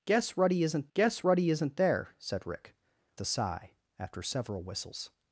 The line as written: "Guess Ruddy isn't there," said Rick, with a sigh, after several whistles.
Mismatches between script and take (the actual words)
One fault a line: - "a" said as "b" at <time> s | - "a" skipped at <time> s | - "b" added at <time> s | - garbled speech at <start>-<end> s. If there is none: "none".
- "guess Ruddy isn't" added at 0.9 s
- "with" skipped at 2.8 s